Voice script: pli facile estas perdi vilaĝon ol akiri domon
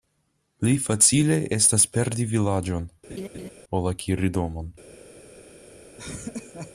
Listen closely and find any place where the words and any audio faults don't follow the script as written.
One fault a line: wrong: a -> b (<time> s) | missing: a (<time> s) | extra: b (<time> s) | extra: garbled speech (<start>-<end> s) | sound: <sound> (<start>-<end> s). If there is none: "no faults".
sound: laugh (3.1-3.5 s)
sound: laugh (6.0-6.7 s)